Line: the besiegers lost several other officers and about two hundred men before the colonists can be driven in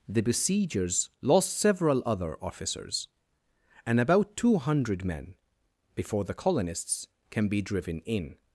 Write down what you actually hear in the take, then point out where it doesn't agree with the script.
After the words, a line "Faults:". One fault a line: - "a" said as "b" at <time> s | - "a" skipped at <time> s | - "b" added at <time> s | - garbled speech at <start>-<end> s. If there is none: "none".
the besiegers lost several other officers and about two hundred men before the colonists can be driven in
Faults:
none